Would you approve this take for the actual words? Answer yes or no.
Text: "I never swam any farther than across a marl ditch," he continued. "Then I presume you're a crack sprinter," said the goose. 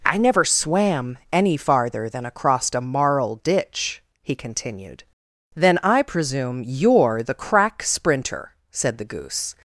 no